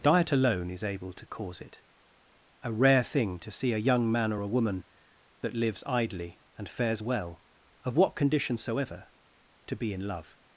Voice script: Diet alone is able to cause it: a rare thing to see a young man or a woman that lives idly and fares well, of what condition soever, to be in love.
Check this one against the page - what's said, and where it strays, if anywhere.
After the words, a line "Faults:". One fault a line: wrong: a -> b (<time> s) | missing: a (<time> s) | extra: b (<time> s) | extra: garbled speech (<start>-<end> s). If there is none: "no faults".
Diet alone is able to cause it: a rare thing to see a young man or a woman that lives idly and fares well, of what condition soever, to be in love.
Faults:
no faults